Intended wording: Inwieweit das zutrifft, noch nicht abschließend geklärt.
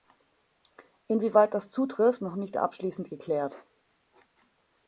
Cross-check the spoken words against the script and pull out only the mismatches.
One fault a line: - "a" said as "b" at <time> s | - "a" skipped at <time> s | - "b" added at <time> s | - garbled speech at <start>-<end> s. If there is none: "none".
none